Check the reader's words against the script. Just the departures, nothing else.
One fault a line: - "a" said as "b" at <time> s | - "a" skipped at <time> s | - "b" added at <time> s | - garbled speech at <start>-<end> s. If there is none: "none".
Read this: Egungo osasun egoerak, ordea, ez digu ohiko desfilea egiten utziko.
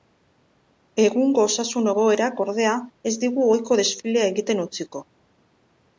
none